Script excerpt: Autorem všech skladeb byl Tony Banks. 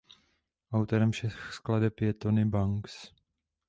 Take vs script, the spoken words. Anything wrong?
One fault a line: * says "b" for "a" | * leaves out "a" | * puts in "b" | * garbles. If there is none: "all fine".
* says "je" for "byl"